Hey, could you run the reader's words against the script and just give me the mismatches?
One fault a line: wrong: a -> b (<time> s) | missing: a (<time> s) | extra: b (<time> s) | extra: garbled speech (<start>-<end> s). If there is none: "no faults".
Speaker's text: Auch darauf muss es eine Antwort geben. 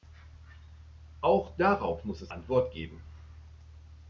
missing: eine (2.3 s)